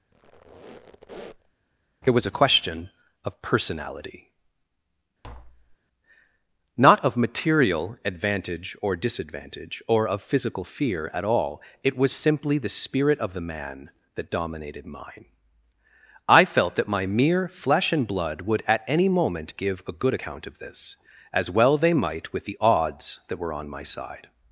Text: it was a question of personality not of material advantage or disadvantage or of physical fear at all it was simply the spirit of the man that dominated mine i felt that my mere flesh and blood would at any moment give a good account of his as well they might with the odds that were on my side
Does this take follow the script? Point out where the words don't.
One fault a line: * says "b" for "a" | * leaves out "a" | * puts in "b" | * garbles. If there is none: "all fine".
* says "this" for "his"